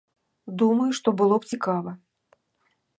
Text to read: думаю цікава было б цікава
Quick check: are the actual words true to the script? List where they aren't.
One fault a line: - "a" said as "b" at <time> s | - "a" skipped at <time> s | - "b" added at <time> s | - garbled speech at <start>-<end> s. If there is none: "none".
- "цікава" said as "што" at 1.0 s